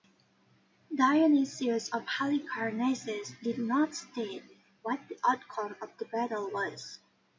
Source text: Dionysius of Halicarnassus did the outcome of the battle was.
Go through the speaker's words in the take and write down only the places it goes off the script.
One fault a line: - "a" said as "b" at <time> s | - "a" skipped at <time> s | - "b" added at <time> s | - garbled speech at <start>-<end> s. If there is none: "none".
- "not state what" added at 3.6 s